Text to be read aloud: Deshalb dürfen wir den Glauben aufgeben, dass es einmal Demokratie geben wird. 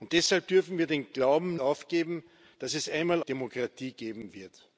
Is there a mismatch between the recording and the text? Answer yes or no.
no